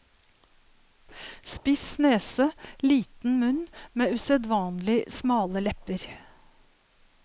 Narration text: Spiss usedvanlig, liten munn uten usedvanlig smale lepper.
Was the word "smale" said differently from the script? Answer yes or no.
no